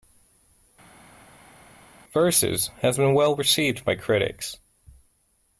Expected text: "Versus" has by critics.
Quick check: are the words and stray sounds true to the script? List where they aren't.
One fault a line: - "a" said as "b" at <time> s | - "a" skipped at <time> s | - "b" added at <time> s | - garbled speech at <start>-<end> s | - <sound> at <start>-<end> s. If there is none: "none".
- "been well received" added at 3.0 s